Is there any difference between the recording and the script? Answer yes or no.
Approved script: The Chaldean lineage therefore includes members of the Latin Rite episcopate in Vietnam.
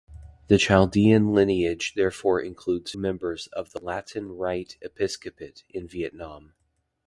no